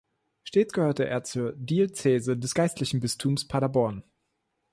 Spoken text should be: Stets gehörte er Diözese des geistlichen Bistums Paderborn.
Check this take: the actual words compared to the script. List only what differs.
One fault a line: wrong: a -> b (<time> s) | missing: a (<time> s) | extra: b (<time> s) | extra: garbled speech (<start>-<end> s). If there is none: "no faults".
extra: zur (1.2 s)